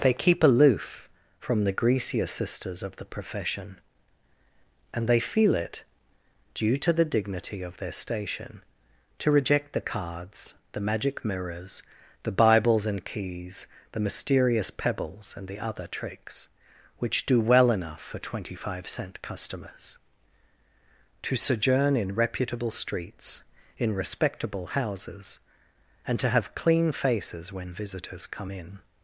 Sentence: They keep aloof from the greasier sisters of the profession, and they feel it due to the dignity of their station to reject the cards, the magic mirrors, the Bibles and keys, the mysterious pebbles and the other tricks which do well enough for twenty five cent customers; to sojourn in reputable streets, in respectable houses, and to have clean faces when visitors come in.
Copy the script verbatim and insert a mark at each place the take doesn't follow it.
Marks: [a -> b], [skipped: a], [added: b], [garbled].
They keep aloof from the greasier sisters of the profession, and they feel it due to the dignity of their station to reject the cards, the magic mirrors, the Bibles and keys, the mysterious pebbles and the other tricks which do well enough for twenty five cent customers; to sojourn in reputable streets, in respectable houses, and to have clean faces when visitors come in.